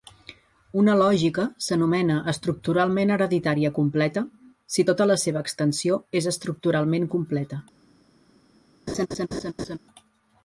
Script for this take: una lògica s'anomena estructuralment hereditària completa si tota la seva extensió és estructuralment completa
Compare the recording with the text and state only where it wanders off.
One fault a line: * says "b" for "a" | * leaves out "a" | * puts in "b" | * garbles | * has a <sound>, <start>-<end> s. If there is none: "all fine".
* has a laugh, 8.9-9.8 s